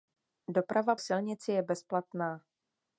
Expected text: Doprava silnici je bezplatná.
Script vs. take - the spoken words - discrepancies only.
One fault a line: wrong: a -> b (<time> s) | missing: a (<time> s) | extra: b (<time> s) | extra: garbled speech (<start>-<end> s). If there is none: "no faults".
no faults